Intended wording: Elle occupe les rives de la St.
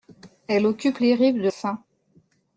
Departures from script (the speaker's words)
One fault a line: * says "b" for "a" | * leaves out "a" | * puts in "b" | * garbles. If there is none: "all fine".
* leaves out "la"